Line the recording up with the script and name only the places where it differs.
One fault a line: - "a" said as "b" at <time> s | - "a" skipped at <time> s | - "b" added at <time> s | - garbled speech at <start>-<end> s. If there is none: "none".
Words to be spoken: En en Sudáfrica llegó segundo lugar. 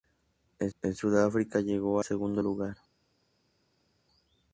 none